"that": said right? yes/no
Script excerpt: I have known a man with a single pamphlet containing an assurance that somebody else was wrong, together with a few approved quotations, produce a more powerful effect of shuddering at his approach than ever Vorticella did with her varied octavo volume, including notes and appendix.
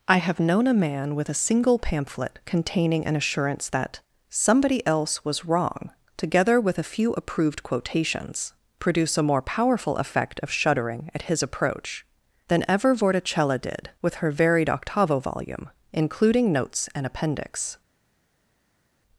yes